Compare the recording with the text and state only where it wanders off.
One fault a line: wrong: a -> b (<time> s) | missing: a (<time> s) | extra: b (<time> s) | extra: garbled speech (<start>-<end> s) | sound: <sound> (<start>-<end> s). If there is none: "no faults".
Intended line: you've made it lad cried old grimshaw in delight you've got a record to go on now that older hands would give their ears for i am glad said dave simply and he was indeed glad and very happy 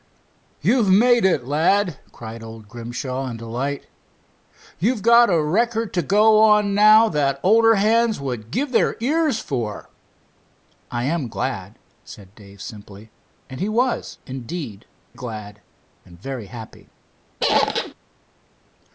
sound: squeak (17.4-17.9 s)